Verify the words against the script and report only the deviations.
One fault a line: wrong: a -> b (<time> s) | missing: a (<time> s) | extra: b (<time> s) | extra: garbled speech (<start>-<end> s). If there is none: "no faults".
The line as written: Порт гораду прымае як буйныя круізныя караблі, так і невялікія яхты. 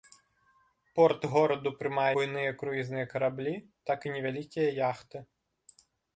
missing: як (2.1 s)